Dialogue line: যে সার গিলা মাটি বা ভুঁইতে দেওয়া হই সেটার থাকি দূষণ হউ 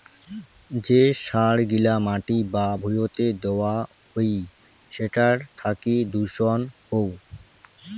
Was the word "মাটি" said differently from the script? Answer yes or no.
no